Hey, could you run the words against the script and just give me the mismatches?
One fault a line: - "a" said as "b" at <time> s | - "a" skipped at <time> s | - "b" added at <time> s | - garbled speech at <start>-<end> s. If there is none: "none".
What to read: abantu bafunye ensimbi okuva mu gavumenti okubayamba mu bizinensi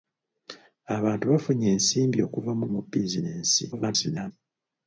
- "gavumenti okubayamba" skipped at 2.6 s
- garbled speech at 3.7-4.3 s